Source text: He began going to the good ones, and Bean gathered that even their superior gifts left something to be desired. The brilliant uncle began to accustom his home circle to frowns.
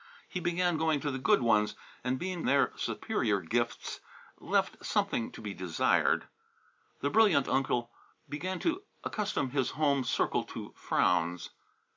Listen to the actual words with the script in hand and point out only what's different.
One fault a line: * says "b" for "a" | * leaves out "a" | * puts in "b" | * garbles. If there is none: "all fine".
* leaves out "gathered that even"